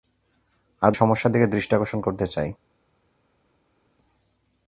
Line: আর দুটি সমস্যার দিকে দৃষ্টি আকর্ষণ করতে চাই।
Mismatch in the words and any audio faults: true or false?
true